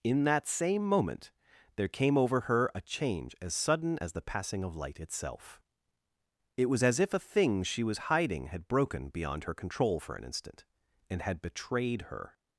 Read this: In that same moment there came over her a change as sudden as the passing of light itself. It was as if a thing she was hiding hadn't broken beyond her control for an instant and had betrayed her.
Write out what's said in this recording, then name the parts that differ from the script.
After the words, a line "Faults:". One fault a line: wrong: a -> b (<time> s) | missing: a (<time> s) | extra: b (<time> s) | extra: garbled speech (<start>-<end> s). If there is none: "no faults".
In that same moment there came over her a change as sudden as the passing of light itself. It was as if a thing she was hiding had broken beyond her control for an instant and had betrayed her.
Faults:
wrong: hadn't -> had (8.5 s)